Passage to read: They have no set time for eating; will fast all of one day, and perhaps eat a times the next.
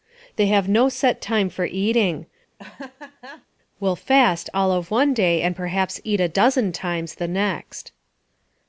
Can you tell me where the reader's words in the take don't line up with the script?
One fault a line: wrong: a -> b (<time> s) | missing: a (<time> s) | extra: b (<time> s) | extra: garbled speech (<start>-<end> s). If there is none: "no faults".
extra: dozen (6.3 s)